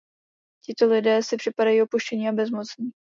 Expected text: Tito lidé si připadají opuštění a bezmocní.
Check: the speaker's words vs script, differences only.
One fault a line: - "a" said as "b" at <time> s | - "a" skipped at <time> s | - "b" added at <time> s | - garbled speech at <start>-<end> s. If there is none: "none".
none